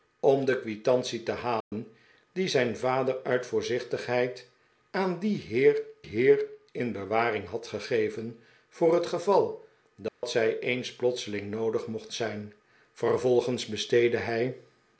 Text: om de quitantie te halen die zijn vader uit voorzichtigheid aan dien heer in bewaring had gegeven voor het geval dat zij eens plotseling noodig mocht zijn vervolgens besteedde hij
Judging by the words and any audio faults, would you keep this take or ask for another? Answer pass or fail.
fail